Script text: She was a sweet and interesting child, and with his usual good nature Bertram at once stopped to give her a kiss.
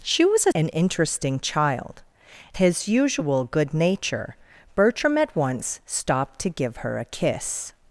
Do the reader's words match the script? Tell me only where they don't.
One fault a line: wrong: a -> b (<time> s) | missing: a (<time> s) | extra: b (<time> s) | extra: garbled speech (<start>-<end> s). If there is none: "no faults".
missing: sweet (0.5 s)
missing: and with (2.0 s)